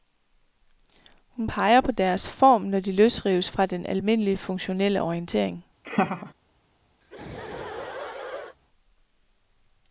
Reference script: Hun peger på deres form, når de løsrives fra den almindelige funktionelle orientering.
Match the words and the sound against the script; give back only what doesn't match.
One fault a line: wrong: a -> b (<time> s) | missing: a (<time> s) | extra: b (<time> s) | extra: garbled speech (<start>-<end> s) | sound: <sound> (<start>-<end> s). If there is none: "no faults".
sound: laugh (5.8-6.3 s)
sound: laugh (7.0-8.6 s)